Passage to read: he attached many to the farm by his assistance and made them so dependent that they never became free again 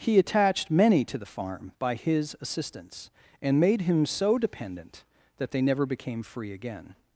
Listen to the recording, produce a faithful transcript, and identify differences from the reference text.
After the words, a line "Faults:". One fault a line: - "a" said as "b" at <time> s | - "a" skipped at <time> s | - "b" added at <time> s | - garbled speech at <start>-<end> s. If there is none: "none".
he attached many to the farm by his assistance and made him so dependent that they never became free again
Faults:
- "them" said as "him" at 3.8 s